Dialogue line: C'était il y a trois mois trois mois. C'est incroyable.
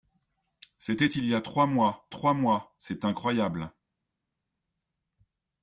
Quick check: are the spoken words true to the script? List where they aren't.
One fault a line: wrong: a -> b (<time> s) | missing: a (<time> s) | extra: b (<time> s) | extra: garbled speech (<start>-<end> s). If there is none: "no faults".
no faults